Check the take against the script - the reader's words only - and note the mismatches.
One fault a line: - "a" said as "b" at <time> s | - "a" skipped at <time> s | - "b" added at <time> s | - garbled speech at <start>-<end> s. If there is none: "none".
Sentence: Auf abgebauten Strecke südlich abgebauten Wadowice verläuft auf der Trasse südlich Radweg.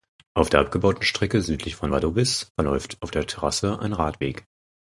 - "der" added at 0.5 s
- "abgebauten" said as "von" at 1.8 s
- "südlich" said as "ein" at 3.8 s